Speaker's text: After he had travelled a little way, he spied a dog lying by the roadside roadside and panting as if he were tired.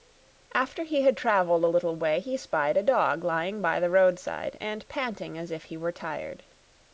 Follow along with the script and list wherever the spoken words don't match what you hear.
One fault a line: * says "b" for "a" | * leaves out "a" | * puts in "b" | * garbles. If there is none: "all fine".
* leaves out "roadside"